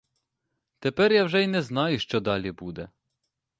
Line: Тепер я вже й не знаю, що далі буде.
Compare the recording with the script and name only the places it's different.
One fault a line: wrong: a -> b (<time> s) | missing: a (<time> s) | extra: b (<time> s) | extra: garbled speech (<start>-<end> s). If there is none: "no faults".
no faults